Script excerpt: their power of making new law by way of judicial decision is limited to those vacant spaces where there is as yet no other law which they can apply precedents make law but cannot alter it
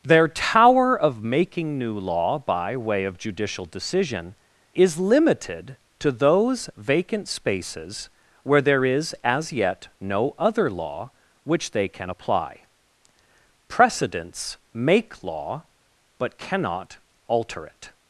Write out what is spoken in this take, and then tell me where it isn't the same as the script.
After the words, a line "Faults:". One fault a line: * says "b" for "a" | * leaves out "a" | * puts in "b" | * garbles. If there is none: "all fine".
their tower of making new law by way of judicial decision is limited to those vacant spaces where there is as yet no other law which they can apply precedents make law but cannot alter it
Faults:
* says "tower" for "power"